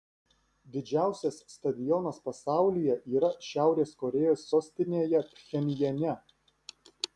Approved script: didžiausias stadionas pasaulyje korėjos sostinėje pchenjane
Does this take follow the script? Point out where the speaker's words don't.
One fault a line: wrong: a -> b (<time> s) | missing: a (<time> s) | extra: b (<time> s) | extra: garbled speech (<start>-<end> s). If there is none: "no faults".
extra: yra šiaurės (3.2 s)